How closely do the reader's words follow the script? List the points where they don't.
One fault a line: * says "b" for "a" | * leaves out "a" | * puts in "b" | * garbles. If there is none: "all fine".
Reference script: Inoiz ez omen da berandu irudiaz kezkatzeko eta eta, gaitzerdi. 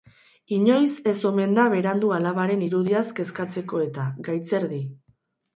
* puts in "alabaren"
* leaves out "eta"